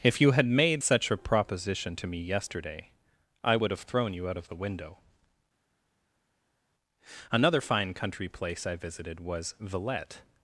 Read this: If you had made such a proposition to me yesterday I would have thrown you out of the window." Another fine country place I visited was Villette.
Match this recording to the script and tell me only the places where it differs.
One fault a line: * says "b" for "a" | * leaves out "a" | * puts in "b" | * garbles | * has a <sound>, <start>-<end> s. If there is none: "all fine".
all fine